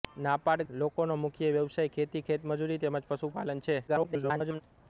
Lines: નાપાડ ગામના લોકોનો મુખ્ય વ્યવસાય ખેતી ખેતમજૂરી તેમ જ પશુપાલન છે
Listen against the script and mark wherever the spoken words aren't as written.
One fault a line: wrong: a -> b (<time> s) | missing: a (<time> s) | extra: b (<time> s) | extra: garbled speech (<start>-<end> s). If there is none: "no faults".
missing: ગામના (0.6 s)
extra: garbled speech (3.9-4.6 s)